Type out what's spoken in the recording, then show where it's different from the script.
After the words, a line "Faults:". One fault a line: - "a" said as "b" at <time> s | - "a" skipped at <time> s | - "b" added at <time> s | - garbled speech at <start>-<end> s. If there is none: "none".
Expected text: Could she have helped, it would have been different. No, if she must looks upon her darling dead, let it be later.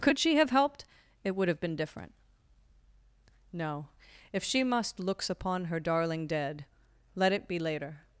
Could she have helped, it would have been different. No, if she must looks upon her darling dead, let it be later.
Faults:
none